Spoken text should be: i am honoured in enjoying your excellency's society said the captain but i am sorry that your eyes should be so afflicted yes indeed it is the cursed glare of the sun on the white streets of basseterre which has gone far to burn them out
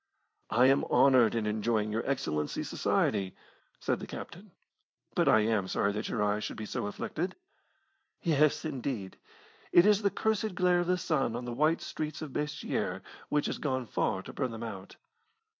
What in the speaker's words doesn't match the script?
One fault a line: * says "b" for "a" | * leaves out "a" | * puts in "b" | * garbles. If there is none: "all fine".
all fine